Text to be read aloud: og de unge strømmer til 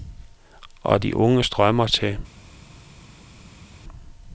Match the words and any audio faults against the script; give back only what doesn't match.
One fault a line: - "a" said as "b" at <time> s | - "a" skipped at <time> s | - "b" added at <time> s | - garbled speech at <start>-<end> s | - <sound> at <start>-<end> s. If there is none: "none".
none